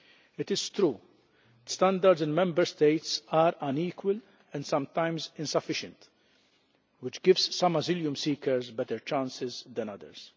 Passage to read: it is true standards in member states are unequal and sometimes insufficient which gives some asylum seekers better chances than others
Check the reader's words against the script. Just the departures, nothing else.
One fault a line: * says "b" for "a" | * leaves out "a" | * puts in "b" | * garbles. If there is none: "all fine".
all fine